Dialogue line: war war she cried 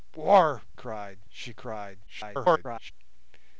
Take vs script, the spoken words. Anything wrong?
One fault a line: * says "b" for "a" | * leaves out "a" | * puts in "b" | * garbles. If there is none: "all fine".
* says "cried" for "war"
* garbles